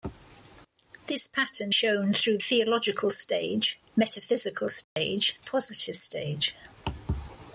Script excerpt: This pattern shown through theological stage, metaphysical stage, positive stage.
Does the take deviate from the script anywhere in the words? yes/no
no